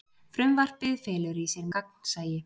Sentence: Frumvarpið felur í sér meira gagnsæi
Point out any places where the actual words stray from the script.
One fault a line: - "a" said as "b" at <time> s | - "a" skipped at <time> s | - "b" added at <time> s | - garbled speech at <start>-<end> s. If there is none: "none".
- "meira" skipped at 1.7 s